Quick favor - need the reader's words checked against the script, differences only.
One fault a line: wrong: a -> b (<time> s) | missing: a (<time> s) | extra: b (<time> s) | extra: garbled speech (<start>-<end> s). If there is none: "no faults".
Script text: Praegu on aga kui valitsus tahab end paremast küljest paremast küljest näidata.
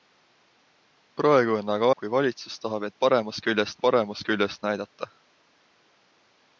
no faults